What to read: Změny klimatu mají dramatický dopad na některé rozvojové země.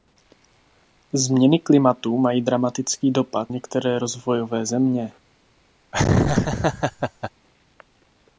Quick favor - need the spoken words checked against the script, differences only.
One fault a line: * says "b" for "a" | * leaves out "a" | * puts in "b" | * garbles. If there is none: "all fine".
* leaves out "na"